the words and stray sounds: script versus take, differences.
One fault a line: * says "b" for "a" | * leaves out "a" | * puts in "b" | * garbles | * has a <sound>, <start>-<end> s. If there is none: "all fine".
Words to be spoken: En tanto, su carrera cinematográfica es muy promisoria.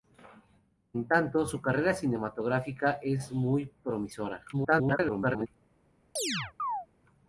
* garbles
* has a chirp, 6.2-6.9 s